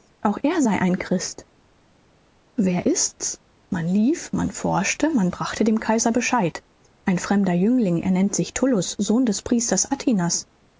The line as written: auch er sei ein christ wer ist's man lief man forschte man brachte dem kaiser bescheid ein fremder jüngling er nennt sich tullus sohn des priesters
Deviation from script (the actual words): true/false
false